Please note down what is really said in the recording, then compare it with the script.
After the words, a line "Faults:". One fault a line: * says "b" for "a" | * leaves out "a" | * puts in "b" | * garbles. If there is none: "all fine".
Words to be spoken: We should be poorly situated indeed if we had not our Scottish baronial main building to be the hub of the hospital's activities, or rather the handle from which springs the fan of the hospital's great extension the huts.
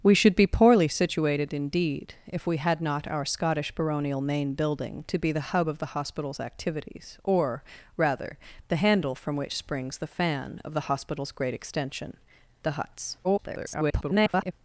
We should be poorly situated indeed if we had not our Scottish baronial main building to be the hub of the hospital's activities, or rather the handle from which springs the fan of the hospital's great extension the huts. [garbled]
Faults:
* garbles